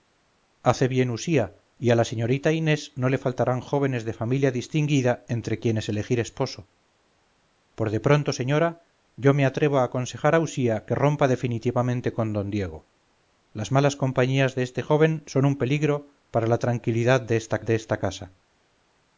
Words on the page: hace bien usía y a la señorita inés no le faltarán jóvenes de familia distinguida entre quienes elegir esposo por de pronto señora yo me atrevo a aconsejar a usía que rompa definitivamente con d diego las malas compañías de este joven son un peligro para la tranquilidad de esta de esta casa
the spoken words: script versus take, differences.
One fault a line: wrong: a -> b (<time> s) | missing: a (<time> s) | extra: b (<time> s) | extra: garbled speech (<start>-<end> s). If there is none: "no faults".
no faults